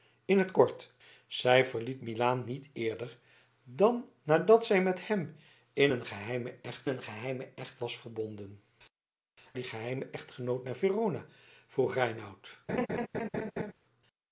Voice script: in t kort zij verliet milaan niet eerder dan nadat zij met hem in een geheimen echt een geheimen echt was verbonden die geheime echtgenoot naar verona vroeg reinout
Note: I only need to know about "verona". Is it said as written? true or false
true